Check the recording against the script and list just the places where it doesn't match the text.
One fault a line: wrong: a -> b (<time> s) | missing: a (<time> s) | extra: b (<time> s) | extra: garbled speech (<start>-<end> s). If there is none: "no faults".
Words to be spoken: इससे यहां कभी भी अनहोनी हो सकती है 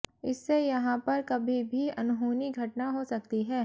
extra: पर (1.0 s)
extra: घटना (2.5 s)